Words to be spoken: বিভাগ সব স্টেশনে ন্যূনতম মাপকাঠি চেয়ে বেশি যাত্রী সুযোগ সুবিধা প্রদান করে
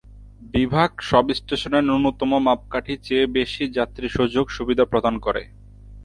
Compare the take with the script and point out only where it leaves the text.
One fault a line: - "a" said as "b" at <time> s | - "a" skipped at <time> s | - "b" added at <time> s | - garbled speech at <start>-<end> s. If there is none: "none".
none